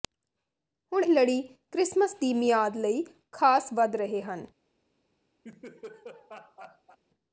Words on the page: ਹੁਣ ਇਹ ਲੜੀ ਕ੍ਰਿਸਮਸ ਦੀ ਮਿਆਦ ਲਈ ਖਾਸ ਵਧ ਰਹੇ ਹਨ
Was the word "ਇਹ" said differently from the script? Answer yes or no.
yes